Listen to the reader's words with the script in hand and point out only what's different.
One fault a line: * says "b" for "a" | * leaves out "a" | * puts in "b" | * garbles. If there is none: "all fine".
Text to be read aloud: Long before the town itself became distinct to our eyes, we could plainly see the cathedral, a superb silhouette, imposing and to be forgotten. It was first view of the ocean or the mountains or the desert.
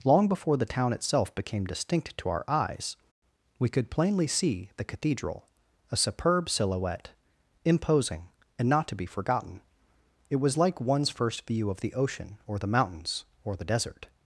* puts in "not"
* puts in "like one's"